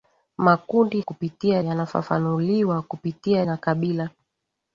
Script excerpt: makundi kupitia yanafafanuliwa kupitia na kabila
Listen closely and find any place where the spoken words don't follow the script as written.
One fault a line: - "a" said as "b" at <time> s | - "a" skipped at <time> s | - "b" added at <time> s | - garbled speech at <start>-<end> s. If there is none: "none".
none